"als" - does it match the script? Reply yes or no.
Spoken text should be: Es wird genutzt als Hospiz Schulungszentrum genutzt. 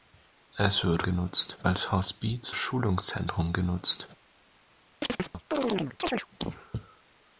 yes